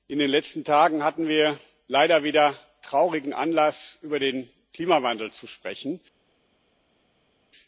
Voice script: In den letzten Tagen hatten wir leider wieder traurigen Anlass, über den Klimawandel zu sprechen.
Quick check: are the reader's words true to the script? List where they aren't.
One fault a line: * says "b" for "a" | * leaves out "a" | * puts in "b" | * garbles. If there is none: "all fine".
all fine